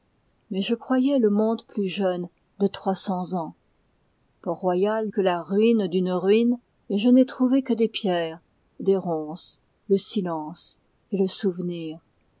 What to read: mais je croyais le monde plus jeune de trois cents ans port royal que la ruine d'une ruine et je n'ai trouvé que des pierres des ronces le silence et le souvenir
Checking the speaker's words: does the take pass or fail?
pass